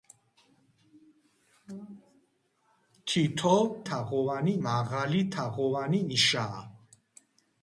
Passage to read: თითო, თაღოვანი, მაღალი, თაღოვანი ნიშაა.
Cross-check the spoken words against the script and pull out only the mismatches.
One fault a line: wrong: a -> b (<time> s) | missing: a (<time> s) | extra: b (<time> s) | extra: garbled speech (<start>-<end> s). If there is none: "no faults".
no faults